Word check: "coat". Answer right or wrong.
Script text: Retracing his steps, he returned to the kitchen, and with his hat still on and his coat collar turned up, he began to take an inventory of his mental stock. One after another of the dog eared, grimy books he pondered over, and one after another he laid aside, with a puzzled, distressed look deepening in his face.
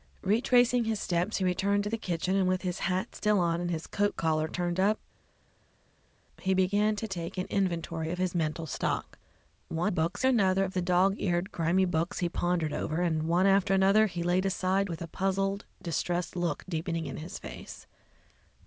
right